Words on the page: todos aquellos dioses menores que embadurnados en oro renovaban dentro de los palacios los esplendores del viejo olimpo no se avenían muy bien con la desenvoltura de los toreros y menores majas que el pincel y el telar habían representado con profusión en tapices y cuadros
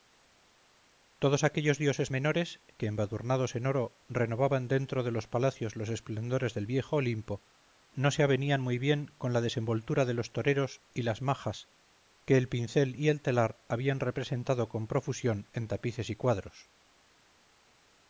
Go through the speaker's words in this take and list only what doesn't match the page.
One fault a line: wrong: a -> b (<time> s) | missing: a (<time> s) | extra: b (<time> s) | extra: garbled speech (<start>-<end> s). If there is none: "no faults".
wrong: menores -> las (11.0 s)